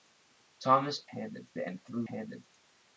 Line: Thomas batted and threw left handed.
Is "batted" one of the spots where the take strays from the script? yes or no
yes